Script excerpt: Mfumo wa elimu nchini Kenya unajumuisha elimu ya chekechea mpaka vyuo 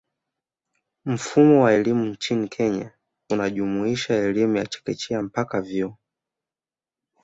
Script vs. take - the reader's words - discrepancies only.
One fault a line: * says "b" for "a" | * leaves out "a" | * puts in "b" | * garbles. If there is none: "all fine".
all fine